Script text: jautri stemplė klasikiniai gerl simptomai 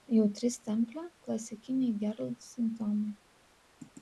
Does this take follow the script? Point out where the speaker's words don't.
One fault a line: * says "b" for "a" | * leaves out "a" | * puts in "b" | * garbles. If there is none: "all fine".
all fine